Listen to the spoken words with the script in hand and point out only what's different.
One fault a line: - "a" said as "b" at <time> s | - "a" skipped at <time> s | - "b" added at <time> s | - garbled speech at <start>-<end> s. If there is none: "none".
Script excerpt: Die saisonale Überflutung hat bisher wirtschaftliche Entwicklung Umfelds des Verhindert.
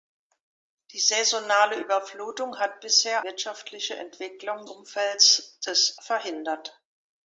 none